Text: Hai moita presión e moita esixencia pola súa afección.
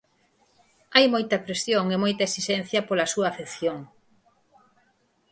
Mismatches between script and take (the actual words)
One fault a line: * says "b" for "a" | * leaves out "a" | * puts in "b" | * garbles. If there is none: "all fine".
all fine